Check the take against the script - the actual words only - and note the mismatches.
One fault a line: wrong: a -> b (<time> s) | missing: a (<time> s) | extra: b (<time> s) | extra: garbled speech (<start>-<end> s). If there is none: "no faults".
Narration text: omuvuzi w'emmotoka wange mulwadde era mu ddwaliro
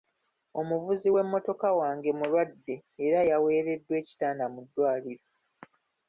extra: yaweereddwa ekitanda (3.3 s)